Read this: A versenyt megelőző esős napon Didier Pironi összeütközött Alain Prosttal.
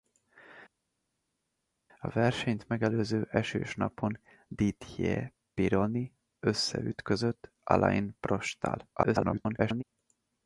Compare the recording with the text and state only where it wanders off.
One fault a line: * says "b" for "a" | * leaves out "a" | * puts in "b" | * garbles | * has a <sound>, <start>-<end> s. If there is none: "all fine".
* garbles